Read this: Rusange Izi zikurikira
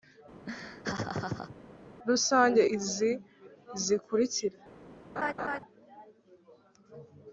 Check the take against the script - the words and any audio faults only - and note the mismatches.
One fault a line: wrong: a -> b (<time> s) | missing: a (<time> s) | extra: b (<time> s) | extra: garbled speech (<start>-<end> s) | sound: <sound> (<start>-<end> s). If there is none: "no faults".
sound: laugh (0.5-1.6 s)
sound: laugh (5.2-5.6 s)